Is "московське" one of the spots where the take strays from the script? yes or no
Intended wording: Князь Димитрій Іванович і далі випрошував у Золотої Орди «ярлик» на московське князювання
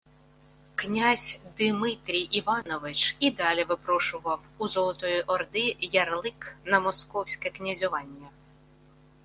no